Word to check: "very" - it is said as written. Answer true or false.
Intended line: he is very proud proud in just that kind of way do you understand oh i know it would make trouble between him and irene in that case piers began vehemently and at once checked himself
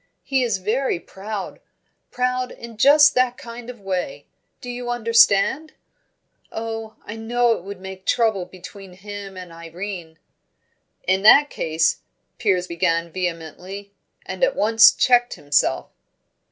true